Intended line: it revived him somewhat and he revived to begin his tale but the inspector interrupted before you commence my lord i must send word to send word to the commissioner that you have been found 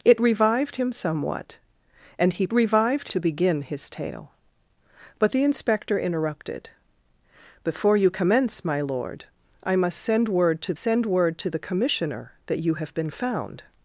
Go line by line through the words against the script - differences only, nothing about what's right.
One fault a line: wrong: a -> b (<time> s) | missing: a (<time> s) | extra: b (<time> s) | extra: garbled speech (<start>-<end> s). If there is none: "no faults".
no faults